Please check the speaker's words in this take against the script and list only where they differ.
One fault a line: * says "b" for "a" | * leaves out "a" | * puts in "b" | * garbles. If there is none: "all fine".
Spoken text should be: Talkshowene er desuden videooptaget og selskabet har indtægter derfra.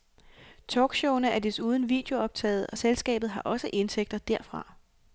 * puts in "også"